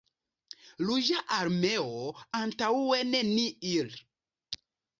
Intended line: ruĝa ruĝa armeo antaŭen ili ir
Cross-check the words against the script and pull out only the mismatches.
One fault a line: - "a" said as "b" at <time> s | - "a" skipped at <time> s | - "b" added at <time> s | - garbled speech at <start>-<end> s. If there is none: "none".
- "ruĝa" skipped at 1.2 s
- "ili" said as "ni" at 3.3 s